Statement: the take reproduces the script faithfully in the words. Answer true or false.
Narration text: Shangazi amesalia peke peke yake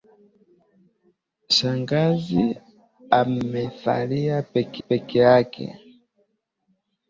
true